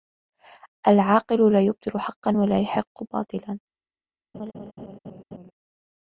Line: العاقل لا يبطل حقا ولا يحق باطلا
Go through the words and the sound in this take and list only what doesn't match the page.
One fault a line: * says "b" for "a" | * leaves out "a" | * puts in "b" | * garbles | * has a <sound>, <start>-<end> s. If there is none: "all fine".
* has a laugh, 4.3-5.5 s